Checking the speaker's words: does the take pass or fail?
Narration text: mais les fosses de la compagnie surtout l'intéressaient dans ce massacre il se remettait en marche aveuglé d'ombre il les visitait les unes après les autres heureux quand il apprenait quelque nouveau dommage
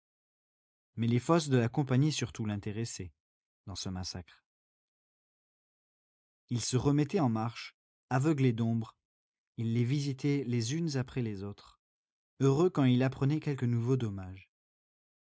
pass